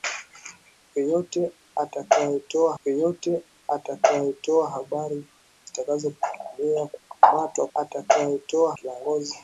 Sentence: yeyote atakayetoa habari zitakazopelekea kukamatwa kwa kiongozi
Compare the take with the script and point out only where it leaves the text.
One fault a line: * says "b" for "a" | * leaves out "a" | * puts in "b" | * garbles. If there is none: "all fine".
* puts in "yeyote atakayetoa"
* says "atakayetoa" for "kwa"